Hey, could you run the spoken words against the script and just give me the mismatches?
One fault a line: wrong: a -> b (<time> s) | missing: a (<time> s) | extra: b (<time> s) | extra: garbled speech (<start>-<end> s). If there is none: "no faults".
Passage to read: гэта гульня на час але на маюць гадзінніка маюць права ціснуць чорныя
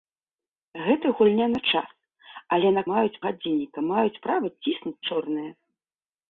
no faults